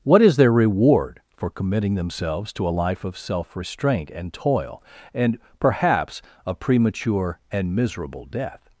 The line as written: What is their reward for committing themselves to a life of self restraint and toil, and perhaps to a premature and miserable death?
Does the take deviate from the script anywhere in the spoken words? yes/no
yes